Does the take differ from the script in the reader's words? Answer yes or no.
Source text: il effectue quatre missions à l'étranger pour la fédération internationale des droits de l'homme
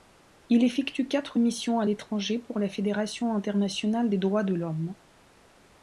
no